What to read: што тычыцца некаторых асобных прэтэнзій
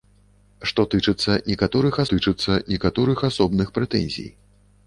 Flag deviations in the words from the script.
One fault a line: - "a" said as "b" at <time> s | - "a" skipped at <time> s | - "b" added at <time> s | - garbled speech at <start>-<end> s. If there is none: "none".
- "тычыцца некаторых" added at 2.1 s